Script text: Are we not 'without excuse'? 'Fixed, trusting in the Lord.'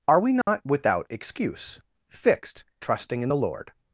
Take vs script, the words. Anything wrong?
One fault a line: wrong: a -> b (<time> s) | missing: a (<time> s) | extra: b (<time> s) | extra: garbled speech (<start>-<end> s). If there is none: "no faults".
no faults